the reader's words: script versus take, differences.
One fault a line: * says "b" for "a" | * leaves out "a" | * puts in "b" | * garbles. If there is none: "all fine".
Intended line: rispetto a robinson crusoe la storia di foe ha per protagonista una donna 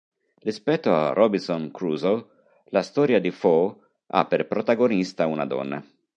all fine